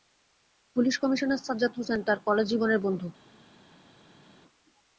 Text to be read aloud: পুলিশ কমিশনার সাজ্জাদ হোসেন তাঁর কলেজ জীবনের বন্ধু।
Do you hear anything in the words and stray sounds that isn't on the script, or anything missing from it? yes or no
no